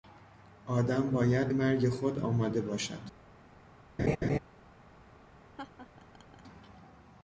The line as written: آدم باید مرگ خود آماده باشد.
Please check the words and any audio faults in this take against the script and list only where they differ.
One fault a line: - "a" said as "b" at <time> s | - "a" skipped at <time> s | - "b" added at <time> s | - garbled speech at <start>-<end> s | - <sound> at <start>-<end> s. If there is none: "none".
- laugh at 4.0-4.4 s
- laugh at 5.6-6.4 s